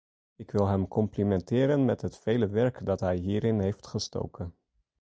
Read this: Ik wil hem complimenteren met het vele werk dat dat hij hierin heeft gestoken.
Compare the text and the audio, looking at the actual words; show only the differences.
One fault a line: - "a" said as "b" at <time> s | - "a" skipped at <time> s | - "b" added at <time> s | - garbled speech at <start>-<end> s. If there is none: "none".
- "dat" skipped at 3.0 s